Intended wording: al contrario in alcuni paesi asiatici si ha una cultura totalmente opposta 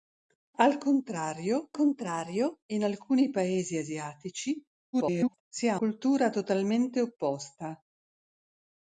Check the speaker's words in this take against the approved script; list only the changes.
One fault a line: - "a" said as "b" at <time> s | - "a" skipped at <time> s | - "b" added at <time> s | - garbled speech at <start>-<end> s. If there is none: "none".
- "contrario" added at 1.7 s
- garbled speech at 4.9-5.4 s
- "una" skipped at 5.8 s